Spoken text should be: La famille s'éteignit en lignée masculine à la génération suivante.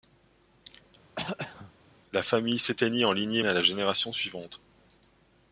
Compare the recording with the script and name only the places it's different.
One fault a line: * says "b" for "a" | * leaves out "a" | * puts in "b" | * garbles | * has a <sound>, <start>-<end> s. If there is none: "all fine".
* has a throat clearing, 1.2-1.7 s
* leaves out "masculine"